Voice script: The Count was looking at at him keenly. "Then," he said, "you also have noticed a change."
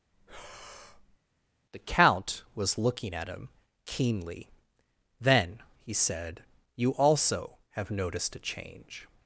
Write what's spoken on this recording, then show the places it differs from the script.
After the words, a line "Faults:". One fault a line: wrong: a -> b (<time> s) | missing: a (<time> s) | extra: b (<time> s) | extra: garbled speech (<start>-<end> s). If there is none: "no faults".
The Count was looking at him keenly. "Then," he said, "you also have noticed a change."
Faults:
missing: at (3.3 s)